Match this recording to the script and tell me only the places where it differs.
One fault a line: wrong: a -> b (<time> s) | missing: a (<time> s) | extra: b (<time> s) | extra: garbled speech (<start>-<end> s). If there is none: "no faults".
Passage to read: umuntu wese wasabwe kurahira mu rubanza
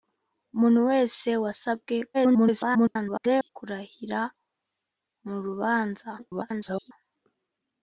extra: garbled speech (2.1-3.5 s)
extra: garbled speech (6.2-6.9 s)